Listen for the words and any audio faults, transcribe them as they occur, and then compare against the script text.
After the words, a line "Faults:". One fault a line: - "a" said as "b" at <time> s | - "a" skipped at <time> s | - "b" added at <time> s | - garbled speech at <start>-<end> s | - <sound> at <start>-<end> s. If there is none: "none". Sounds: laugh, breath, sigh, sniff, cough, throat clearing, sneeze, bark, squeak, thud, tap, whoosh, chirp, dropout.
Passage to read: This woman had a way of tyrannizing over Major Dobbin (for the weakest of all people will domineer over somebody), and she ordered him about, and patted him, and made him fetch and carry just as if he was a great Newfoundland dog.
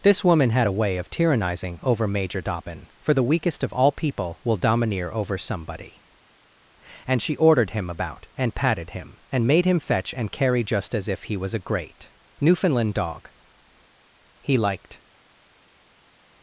This woman had a way of tyrannizing over Major Dobbin (for the weakest of all people will domineer over somebody), and she ordered him about, and patted him, and made him fetch and carry just as if he was a great Newfoundland dog. He liked
Faults:
- "He liked" added at 14.4 s